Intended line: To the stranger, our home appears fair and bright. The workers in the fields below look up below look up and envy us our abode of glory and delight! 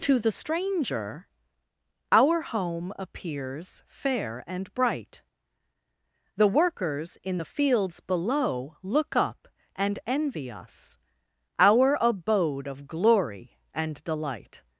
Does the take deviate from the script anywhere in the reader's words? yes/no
yes